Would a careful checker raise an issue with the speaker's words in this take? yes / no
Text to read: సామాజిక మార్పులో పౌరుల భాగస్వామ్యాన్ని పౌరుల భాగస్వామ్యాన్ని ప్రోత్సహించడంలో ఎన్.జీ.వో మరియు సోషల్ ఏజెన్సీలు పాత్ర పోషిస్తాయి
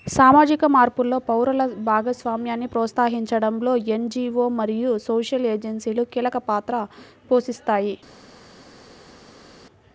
yes